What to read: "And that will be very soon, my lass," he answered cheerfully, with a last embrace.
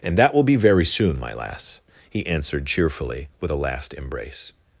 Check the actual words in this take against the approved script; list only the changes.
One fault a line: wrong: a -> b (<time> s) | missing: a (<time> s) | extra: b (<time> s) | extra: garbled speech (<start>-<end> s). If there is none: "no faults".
no faults